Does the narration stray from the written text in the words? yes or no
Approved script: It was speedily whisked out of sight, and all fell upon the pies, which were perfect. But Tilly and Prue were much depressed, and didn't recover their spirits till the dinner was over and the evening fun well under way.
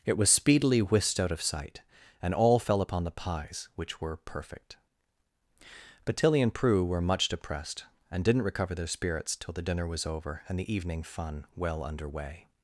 no